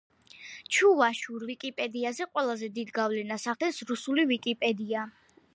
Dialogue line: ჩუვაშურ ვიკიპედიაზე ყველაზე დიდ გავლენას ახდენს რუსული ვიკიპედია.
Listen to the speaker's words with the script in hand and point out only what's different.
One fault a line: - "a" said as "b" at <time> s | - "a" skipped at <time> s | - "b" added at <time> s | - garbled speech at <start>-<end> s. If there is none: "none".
none